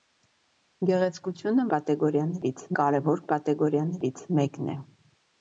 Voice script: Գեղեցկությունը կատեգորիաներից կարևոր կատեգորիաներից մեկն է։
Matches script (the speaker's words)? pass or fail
pass